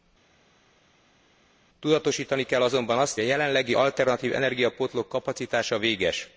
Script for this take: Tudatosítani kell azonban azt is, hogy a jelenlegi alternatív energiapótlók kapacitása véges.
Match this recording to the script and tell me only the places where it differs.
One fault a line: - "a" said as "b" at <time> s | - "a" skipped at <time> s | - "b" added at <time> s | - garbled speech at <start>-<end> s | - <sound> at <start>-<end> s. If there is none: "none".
- "is hogy" skipped at 3.2 s